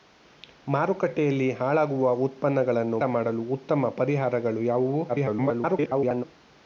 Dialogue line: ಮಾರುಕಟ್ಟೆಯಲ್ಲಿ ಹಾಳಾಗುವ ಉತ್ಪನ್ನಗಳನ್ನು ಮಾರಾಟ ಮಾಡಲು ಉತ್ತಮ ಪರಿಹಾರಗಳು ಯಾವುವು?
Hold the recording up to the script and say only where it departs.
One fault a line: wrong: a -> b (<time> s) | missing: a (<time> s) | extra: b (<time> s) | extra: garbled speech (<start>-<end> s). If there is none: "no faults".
missing: ಮಾರಾಟ (3.0 s)
extra: garbled speech (5.1-6.2 s)